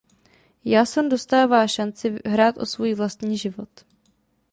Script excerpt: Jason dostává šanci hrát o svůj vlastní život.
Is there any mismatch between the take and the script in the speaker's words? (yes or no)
no